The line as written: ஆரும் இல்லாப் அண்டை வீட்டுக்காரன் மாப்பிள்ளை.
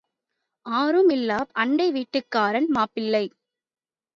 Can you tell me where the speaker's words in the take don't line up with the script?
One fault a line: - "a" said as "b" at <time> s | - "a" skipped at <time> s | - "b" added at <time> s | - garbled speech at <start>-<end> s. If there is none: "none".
none